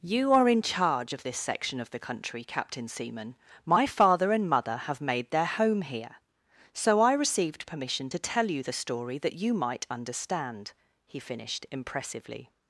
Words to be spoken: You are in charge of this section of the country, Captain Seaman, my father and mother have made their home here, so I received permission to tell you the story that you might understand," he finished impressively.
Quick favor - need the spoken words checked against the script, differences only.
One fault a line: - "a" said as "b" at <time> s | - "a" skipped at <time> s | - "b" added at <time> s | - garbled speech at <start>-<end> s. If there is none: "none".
none